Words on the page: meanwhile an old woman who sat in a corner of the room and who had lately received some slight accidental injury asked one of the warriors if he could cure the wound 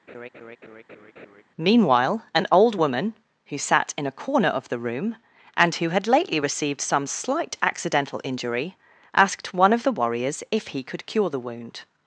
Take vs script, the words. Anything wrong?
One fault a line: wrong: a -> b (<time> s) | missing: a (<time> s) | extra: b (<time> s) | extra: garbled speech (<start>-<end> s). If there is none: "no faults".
no faults